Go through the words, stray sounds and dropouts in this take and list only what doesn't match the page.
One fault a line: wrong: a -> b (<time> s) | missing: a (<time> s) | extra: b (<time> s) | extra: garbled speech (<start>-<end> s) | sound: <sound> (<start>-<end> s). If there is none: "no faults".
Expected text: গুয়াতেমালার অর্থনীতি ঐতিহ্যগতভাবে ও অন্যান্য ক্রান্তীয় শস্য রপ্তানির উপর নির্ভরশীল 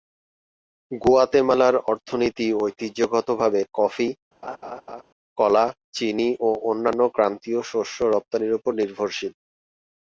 extra: কফি কলা চিনি (3.7 s)
sound: laugh (4.4-5.0 s)